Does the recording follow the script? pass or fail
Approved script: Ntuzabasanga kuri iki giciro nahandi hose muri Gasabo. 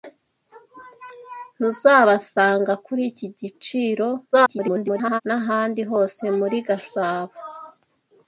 fail